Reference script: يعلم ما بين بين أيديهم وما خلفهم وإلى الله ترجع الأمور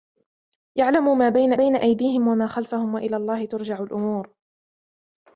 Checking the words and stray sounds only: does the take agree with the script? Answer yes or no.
yes